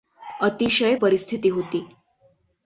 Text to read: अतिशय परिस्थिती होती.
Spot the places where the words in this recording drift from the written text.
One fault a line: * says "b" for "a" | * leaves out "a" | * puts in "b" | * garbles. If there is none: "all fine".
all fine